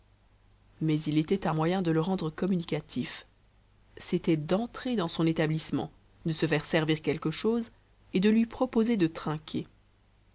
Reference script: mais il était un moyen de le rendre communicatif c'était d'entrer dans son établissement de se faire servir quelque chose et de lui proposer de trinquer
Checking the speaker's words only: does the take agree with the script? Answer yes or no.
yes